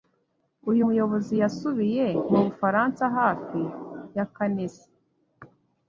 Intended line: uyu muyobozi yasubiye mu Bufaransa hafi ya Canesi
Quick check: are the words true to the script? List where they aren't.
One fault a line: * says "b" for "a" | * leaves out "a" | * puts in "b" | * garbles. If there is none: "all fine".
all fine